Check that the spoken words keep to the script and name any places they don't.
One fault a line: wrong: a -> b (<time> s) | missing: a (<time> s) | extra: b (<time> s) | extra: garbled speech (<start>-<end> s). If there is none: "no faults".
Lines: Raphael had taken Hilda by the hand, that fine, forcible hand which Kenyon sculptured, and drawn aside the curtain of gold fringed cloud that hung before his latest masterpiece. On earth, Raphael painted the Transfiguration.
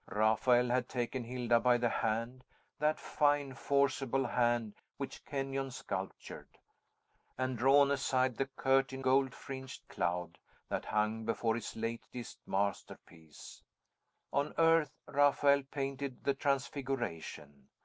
missing: of (9.0 s)